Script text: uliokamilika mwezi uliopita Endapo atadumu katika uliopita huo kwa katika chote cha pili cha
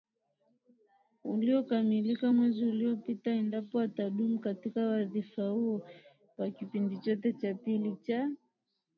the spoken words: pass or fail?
fail